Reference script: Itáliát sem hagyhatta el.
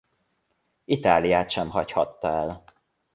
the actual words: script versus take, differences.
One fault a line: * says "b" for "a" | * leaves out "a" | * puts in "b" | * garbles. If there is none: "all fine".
all fine